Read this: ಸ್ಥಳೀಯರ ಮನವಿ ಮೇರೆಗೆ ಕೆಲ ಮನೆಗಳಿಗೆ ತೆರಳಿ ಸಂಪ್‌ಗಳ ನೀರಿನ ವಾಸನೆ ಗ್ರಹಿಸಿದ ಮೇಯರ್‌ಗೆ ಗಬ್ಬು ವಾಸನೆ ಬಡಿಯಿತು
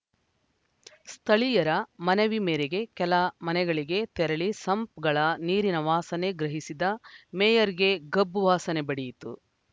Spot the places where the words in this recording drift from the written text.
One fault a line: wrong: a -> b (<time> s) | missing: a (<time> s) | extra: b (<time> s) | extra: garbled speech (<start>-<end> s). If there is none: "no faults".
no faults